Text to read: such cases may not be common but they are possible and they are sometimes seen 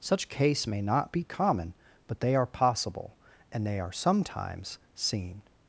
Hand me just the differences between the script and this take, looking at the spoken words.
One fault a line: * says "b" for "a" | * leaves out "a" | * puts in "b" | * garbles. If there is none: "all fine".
* says "case" for "cases"